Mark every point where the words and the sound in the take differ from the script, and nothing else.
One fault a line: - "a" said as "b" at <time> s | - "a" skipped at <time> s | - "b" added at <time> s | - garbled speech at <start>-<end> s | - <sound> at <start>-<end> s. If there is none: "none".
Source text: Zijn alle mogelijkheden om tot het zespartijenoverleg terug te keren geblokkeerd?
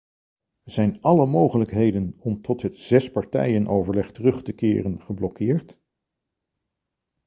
none